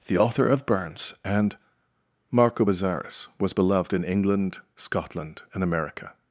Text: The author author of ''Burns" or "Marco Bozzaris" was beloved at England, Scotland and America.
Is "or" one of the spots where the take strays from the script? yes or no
yes